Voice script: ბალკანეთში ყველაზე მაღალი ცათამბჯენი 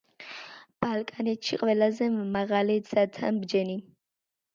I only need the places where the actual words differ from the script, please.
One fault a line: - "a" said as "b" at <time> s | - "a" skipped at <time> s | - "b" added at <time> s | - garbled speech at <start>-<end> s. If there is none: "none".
none